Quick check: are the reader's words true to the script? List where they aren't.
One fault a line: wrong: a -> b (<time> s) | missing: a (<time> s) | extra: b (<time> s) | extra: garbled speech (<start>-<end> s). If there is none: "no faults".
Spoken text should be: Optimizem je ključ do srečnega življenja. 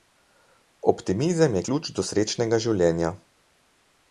no faults